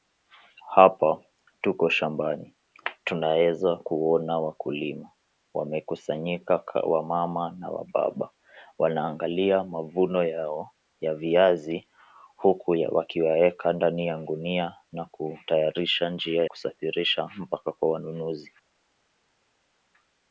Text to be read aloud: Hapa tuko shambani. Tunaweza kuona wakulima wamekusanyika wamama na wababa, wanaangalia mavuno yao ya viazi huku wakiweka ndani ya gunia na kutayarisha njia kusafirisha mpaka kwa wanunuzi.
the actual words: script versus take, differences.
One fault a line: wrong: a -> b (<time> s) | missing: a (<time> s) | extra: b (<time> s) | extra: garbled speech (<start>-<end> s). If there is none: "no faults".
no faults